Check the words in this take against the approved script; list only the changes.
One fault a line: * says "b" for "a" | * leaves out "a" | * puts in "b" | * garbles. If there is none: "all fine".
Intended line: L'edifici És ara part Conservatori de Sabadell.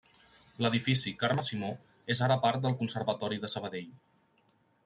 * puts in "Carme Simó"
* puts in "del"